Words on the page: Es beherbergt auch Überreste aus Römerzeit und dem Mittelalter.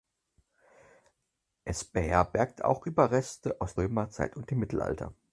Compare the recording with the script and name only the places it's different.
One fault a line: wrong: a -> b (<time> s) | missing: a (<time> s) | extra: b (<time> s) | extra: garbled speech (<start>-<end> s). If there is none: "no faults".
no faults